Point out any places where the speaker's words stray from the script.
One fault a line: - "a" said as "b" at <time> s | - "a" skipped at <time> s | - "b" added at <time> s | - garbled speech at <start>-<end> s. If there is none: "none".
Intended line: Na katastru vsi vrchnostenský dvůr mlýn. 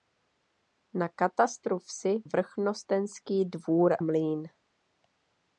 none